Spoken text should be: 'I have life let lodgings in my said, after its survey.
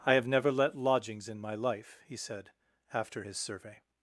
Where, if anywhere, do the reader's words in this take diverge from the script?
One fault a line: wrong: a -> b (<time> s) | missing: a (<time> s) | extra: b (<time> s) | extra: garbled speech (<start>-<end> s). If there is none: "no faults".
wrong: life -> never (0.3 s)
extra: life he (1.5 s)
wrong: its -> his (3.2 s)